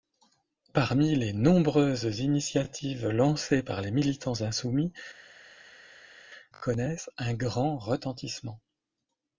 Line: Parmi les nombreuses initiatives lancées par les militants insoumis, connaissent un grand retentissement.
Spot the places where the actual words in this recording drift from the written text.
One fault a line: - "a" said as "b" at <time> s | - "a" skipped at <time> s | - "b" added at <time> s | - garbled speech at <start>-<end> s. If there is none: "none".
none